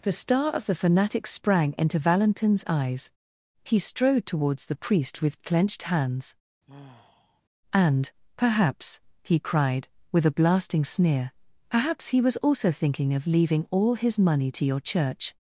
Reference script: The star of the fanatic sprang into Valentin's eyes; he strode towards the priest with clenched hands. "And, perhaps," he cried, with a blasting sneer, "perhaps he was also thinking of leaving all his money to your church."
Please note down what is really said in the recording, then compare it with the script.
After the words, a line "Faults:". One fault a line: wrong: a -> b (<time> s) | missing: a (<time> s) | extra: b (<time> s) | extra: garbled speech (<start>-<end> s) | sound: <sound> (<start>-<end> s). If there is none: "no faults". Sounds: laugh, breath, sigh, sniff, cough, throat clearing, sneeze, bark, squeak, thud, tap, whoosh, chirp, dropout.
The star of the fanatic sprang into Valentin's eyes; he strode towards the priest with clenched hands. "And, perhaps," he cried, with a blasting sneer, "perhaps he was also thinking of leaving all his money to your church."
Faults:
sound: sigh (6.7-7.4 s)